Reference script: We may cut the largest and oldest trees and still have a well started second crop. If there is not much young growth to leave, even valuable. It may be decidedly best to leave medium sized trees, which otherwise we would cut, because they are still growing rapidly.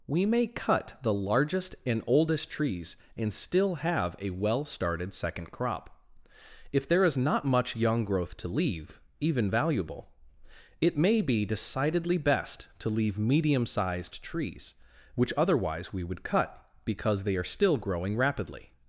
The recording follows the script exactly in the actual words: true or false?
true